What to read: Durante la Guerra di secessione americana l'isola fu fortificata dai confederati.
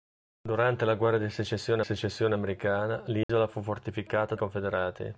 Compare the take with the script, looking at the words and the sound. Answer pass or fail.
fail